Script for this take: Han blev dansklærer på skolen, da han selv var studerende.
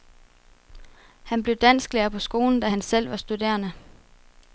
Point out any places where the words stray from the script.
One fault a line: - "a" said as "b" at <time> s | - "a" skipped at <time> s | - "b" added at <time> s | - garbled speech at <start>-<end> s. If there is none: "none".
none